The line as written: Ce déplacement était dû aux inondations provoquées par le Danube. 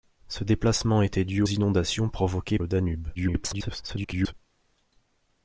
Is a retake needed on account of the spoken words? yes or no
yes